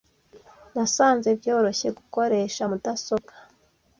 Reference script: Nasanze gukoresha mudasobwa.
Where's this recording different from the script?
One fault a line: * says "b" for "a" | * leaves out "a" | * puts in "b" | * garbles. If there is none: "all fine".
* puts in "byoroshye"